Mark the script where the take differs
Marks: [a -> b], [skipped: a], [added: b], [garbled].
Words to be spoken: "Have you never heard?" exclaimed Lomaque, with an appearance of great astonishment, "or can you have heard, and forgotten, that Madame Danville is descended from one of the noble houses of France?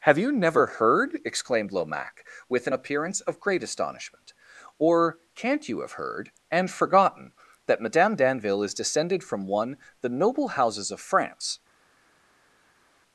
"Have you never heard?" exclaimed Lomaque, with an appearance of great astonishment, "or [can -> can't] you have heard, and forgotten, that Madame Danville is descended from one [skipped: of] the noble houses of France?